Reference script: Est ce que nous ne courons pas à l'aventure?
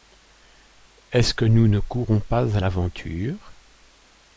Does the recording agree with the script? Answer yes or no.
yes